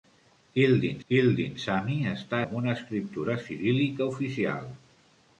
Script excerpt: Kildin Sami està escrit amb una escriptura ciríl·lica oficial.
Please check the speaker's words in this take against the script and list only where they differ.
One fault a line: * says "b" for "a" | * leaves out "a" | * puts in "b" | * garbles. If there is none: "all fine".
* puts in "kildin"
* leaves out "escrit"